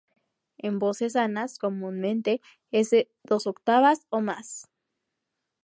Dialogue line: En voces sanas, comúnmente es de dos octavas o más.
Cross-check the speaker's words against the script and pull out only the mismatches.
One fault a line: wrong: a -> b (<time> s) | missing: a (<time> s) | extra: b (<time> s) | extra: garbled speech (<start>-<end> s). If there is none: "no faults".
no faults